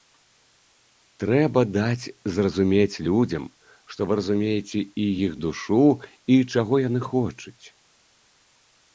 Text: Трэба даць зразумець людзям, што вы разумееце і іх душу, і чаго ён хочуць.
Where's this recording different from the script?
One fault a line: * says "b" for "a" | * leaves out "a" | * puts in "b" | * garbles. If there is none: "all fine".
* says "яны" for "ён"